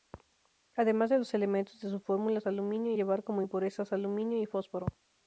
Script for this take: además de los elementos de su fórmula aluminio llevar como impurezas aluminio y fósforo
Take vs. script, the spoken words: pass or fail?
pass